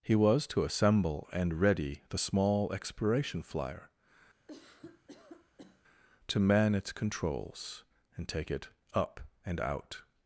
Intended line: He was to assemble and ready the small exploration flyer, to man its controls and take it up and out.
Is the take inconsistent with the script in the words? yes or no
no